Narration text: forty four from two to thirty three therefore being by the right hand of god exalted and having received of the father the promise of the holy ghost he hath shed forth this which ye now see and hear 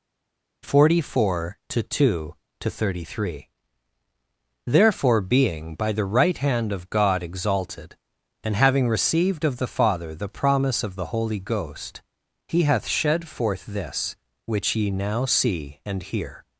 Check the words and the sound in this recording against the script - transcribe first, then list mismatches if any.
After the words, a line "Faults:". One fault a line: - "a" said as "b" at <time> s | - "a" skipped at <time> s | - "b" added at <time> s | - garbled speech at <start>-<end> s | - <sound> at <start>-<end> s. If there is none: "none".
forty four to two to thirty three therefore being by the right hand of god exalted and having received of the father the promise of the holy ghost he hath shed forth this which ye now see and hear
Faults:
- "from" said as "to" at 1.7 s